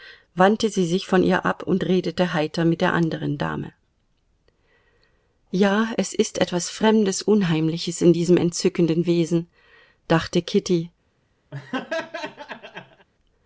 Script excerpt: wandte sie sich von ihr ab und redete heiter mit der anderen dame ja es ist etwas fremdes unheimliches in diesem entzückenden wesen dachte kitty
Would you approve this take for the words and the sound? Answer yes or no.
no